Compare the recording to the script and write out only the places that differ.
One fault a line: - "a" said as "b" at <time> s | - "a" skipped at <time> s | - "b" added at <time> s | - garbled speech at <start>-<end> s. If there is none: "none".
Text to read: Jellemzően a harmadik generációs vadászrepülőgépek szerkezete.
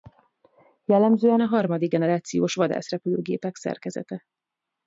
none